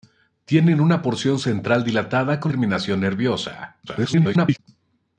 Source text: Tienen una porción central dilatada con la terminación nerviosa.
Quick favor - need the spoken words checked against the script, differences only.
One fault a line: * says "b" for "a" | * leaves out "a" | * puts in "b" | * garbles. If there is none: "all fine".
* leaves out "la"
* garbles